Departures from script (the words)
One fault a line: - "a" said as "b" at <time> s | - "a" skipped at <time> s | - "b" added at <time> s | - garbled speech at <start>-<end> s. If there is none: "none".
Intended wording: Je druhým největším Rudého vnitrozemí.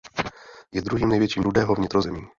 none